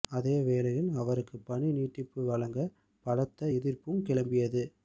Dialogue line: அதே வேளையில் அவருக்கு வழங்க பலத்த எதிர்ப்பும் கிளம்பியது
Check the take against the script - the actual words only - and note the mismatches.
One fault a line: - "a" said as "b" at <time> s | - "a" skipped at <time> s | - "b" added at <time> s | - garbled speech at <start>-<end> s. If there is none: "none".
- "பணி நீட்டிப்பு" added at 1.4 s